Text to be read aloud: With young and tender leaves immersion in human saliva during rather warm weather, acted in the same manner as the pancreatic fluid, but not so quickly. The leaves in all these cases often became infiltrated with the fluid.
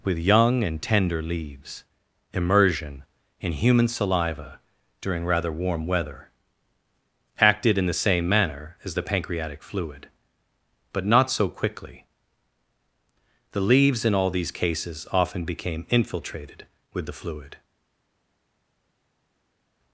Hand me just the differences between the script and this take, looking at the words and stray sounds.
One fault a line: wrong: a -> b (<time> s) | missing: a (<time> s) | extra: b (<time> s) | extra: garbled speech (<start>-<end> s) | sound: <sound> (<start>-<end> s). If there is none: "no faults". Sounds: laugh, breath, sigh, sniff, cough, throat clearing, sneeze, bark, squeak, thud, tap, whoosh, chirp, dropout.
no faults